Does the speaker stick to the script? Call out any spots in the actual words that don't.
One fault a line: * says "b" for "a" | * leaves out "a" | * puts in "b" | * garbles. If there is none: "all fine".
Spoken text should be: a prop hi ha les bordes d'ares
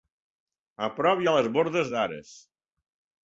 all fine